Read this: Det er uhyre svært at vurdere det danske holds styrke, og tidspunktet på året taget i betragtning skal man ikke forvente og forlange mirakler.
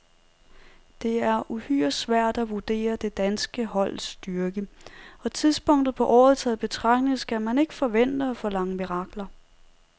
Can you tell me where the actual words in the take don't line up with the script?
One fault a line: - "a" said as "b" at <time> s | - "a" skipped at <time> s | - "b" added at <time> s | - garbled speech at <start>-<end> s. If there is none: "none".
none